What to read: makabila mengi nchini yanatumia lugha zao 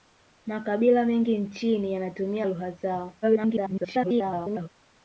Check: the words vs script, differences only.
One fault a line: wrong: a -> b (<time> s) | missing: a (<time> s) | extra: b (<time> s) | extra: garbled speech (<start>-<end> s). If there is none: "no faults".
extra: garbled speech (3.2-4.7 s)